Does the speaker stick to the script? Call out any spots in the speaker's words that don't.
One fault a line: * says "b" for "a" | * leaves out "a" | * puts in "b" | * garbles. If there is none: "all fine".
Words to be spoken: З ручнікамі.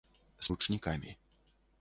all fine